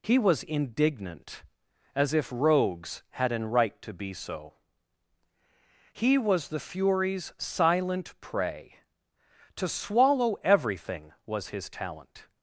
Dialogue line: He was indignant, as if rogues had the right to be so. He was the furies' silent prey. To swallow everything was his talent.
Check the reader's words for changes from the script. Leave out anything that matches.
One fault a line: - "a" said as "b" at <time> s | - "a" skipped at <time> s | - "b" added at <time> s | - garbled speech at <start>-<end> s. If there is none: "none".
- "the" said as "an" at 3.3 s